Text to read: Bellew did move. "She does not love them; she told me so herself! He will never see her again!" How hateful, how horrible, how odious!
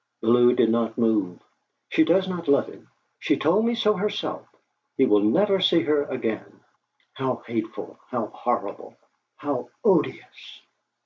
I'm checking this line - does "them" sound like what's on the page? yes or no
no